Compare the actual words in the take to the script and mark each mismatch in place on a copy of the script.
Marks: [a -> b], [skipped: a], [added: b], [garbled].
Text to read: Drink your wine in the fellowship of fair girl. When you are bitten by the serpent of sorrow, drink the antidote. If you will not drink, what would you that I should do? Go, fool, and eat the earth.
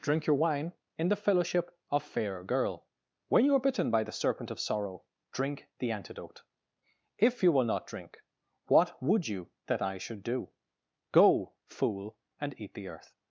Drink your wine in the fellowship of fair girl. When you are bitten by the serpent of sorrow, drink the antidote. If you will not drink, what would you that I should do? Go, fool, and eat the earth.